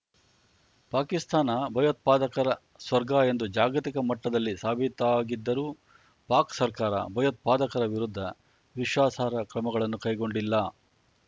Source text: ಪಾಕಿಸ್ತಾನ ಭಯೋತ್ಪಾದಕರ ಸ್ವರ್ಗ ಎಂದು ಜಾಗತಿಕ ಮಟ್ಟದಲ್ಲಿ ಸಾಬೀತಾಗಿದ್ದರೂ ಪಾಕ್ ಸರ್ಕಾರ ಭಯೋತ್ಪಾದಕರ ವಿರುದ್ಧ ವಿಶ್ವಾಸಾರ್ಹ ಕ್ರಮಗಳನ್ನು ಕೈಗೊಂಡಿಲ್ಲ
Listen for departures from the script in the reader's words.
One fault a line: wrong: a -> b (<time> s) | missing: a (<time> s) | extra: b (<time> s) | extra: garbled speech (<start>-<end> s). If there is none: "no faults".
no faults